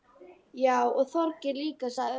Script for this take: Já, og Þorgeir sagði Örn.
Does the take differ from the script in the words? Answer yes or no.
yes